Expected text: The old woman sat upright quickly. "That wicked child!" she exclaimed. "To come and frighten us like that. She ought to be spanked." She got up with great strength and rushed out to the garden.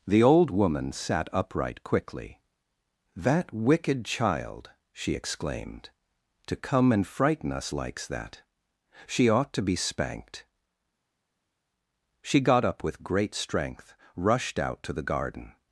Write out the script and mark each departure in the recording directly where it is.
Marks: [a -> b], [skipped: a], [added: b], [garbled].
The old woman sat upright quickly. "That wicked child!" she exclaimed. "To come and frighten us [like -> likes] that. She ought to be spanked." She got up with great strength [skipped: and] rushed out to the garden.